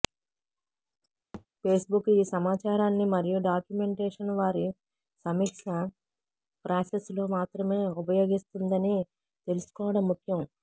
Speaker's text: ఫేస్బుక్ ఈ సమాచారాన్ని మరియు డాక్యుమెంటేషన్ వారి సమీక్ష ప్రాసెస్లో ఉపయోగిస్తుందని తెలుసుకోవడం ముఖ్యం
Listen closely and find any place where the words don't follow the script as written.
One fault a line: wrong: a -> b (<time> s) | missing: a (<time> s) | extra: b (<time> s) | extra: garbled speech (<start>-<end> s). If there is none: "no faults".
extra: మాత్రమే (7.4 s)